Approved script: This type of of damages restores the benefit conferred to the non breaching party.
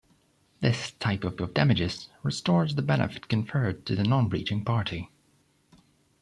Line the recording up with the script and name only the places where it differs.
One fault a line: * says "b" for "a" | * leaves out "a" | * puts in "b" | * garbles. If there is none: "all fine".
all fine